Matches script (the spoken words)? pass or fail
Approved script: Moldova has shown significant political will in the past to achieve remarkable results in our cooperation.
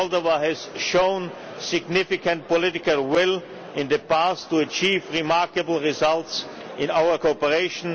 pass